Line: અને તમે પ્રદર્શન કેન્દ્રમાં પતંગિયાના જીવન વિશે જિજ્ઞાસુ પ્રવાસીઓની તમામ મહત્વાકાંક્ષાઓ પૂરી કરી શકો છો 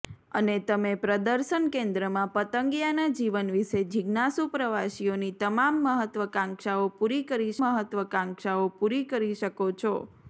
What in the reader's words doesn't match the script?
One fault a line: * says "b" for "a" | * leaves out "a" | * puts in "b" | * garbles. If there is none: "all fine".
* puts in "મહત્વાકાંક્ષાઓ પૂરી કરી"